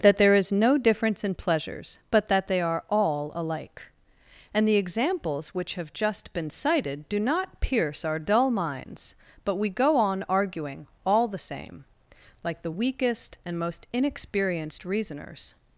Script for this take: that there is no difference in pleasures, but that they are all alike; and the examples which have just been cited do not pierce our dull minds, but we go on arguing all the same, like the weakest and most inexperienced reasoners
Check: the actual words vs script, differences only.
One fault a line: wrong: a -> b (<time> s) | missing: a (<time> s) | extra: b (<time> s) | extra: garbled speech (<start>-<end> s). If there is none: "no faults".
no faults